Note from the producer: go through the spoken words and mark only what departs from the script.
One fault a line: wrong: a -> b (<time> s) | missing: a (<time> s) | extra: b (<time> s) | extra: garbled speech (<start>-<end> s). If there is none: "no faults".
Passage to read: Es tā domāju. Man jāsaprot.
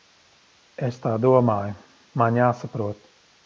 no faults